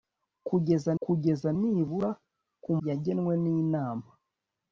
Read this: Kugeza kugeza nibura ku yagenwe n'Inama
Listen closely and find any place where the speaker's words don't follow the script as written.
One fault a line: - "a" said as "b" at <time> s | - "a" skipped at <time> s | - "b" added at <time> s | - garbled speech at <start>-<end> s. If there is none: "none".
none